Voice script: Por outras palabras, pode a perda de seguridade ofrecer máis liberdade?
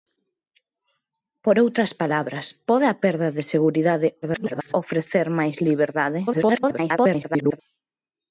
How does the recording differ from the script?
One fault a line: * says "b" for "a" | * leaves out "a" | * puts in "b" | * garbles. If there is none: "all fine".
* garbles
* garbles